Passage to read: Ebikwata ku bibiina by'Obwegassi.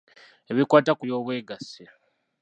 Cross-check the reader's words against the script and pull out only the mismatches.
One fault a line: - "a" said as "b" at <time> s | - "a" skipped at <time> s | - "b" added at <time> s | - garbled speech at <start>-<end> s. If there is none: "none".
- "bibiina" skipped at 1.0 s